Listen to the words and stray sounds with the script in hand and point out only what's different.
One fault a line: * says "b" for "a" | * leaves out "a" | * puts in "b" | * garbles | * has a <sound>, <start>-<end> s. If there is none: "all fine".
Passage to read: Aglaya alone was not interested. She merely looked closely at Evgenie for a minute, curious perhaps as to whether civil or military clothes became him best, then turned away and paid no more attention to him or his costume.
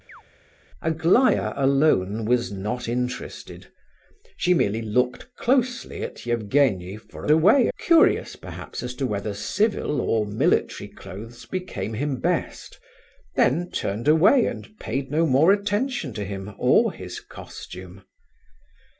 * has a chirp, 0.1-0.2 s
* says "away" for "minute"